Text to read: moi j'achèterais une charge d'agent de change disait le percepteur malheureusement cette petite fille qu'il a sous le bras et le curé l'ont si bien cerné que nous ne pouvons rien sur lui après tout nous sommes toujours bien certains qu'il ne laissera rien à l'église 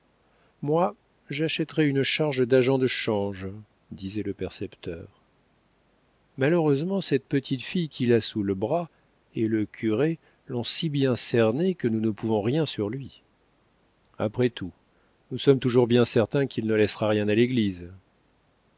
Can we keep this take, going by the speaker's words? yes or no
yes